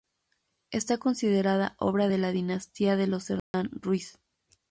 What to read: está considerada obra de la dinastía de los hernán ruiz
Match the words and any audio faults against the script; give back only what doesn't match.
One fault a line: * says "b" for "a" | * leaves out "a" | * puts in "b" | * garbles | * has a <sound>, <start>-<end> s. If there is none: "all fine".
* has a dropout, 3.4-3.5 s